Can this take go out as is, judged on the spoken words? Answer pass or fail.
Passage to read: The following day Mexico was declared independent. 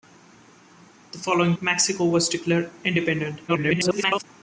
fail